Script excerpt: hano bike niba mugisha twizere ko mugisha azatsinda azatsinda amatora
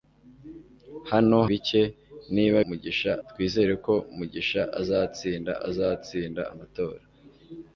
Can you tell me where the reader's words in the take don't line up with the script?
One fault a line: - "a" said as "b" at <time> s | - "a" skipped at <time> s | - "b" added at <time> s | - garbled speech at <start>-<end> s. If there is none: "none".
none